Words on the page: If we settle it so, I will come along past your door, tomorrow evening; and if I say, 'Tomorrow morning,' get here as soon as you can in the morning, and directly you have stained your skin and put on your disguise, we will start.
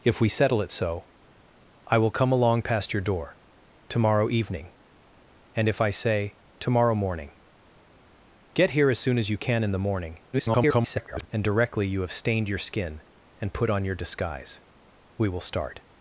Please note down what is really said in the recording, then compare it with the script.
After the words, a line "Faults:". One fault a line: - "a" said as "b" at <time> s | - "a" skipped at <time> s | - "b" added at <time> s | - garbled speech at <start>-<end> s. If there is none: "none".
If we settle it so, I will come along past your door, tomorrow evening; and if I say, 'Tomorrow morning,' get here as soon as you can in the morning, [garbled] and directly you have stained your skin and put on your disguise, we will start.
Faults:
- garbled speech at 10.3-11.3 s